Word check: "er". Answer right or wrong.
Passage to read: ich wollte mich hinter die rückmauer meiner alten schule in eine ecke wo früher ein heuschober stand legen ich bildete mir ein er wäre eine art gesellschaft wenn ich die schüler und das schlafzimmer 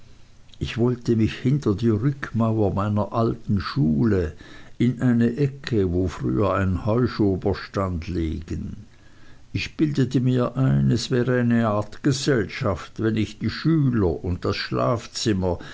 wrong